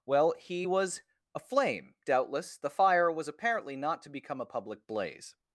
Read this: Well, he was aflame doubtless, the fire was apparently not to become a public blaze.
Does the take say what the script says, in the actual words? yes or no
yes